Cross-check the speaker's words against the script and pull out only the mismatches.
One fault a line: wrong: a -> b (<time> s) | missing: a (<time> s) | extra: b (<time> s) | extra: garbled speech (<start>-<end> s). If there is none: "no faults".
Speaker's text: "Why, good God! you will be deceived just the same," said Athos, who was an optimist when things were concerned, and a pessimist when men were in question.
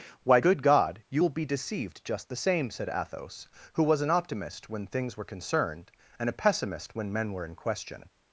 no faults